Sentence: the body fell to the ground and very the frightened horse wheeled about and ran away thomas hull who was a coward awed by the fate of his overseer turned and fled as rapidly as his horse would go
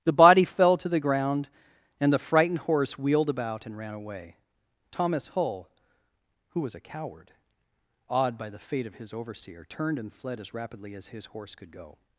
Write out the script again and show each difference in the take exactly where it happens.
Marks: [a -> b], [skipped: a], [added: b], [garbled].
the body fell to the ground and [skipped: very] the frightened horse wheeled about and ran away thomas hull who was a coward awed by the fate of his overseer turned and fled as rapidly as his horse [would -> could] go